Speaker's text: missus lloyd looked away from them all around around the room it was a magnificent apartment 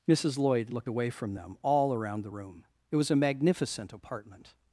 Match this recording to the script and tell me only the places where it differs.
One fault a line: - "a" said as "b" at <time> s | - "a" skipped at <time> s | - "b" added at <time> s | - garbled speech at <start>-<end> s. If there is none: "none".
- "around" skipped at 2.2 s